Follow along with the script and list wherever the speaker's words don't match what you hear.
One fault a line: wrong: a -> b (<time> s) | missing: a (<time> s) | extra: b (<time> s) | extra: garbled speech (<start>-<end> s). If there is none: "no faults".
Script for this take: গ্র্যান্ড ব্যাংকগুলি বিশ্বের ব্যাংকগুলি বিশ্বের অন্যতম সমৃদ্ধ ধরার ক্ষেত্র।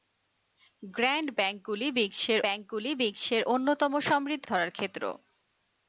no faults